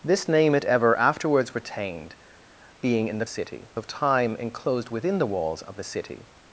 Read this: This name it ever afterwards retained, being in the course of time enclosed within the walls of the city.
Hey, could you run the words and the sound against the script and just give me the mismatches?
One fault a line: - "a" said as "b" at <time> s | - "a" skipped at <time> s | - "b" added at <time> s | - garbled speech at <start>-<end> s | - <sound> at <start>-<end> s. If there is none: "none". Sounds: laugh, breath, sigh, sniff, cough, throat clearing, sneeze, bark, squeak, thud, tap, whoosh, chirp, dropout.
- "course" said as "city" at 3.2 s